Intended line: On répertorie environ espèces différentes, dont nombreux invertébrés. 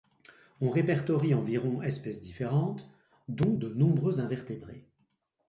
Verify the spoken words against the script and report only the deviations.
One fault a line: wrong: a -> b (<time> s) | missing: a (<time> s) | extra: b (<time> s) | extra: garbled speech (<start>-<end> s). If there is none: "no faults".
extra: de (3.5 s)